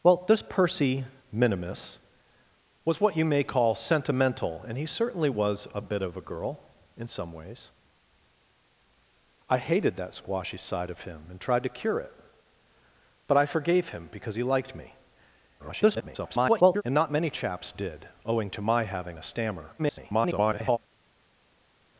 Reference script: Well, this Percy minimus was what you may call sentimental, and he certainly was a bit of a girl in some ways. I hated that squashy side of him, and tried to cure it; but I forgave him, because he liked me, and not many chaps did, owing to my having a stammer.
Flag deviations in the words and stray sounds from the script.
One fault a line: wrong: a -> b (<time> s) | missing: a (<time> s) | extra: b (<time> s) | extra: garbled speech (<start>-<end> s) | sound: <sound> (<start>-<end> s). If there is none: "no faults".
extra: garbled speech (15.6-16.8 s)
extra: garbled speech (19.8-20.8 s)